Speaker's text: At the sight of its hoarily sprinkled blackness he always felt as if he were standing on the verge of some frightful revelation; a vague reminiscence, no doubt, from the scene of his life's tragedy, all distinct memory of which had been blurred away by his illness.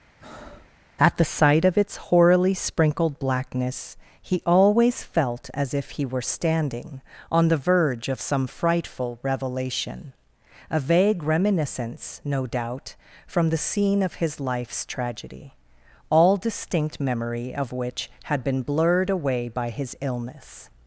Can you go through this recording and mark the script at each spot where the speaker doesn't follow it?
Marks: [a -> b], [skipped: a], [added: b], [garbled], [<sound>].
[breath] At the sight of its hoarily sprinkled blackness he always felt as if he were standing on the verge of some frightful revelation; a vague reminiscence, no doubt, from the scene of his life's tragedy, all distinct memory of which had been blurred away by his illness.